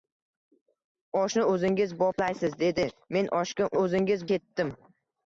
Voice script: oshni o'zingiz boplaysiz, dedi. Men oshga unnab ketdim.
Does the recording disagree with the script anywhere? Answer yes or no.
yes